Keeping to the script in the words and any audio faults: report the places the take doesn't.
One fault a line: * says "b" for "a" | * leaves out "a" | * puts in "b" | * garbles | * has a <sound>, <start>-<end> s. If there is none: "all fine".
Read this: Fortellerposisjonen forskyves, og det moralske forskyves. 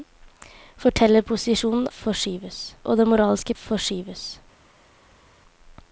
all fine